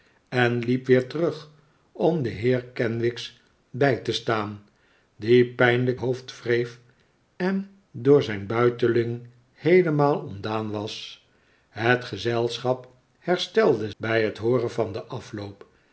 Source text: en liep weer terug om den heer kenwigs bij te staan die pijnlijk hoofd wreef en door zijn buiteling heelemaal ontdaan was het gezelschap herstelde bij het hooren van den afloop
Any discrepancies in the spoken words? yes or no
no